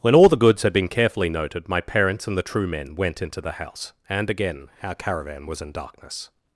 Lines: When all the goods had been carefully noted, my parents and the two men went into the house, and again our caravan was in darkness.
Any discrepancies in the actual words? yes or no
yes